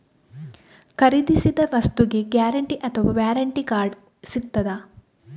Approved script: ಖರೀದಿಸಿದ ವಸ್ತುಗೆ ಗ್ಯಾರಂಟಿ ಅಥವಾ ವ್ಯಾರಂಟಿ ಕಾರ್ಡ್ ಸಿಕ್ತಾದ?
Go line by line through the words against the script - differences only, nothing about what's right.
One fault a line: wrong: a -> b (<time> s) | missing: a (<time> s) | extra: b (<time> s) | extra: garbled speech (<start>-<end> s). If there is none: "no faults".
no faults